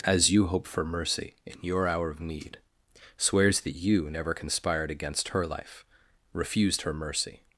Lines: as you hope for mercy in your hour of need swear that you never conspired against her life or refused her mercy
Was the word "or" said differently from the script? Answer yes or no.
yes